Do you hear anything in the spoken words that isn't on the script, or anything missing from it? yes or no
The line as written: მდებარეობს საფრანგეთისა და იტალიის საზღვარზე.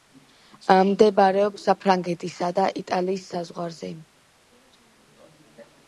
no